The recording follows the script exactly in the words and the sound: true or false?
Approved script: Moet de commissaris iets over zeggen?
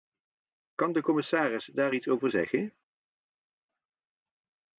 false